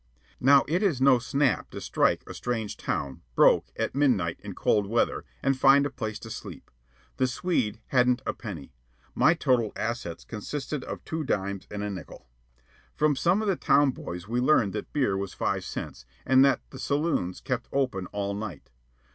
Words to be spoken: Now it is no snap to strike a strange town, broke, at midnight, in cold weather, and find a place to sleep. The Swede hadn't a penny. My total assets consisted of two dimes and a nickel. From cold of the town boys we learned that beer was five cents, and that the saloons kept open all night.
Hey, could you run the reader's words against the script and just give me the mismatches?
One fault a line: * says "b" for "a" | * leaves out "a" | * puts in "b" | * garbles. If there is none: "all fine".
* says "some" for "cold"